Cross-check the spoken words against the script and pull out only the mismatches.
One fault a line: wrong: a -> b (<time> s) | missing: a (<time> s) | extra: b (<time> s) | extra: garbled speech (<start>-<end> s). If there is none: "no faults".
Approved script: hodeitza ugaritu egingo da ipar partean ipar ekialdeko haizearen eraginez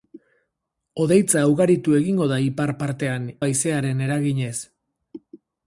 missing: ipar ekialdeko (3.3 s)